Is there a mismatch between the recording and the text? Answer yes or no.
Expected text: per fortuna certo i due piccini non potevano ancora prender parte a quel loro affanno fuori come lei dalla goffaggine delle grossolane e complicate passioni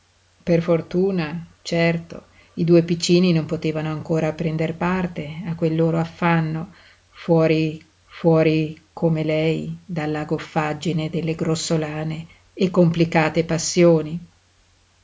yes